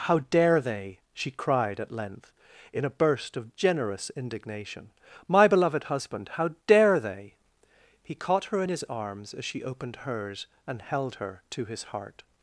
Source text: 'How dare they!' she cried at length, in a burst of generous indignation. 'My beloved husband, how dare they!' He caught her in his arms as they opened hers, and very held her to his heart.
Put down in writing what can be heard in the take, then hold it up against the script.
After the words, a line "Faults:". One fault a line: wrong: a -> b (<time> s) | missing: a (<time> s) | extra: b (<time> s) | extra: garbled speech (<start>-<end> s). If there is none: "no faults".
'How dare they!' she cried at length, in a burst of generous indignation. 'My beloved husband, how dare they!' He caught her in his arms as she opened hers, and held her to his heart.
Faults:
wrong: they -> she (9.4 s)
missing: very (10.8 s)